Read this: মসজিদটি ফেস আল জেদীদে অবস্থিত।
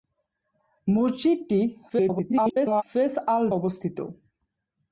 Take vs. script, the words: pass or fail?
fail